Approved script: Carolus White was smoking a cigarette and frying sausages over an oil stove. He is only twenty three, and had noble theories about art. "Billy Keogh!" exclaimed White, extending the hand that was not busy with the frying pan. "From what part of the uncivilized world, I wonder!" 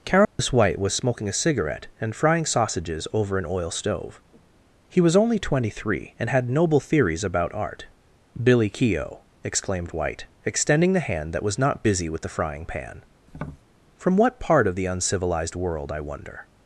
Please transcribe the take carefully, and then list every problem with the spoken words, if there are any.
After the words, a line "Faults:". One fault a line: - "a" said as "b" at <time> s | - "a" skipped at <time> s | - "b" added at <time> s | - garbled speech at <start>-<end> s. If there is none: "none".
Carolus White was smoking a cigarette and frying sausages over an oil stove. He was only twenty three, and had noble theories about art. "Billy Keogh!" exclaimed White, extending the hand that was not busy with the frying pan. "From what part of the uncivilized world, I wonder!"
Faults:
- "is" said as "was" at 5.0 s